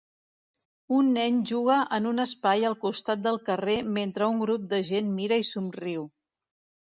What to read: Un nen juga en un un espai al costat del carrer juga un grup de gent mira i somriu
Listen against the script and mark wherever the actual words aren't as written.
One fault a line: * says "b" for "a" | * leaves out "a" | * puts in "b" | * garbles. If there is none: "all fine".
* leaves out "un"
* says "mentre" for "juga"